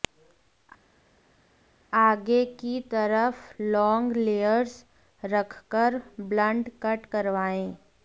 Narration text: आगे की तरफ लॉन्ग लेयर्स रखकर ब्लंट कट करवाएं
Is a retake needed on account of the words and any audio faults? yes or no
no